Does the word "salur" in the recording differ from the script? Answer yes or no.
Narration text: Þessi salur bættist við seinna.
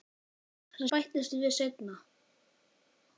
yes